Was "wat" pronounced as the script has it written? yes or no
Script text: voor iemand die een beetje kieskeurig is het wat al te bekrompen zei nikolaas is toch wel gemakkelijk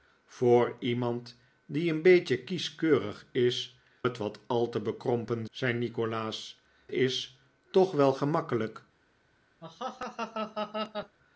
yes